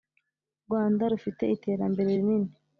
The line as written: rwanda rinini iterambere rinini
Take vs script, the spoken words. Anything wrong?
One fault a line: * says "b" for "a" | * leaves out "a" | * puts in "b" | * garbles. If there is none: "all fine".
* says "rufite" for "rinini"